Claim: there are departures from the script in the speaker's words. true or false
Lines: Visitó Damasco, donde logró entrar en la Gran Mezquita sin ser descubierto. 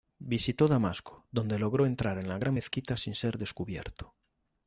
false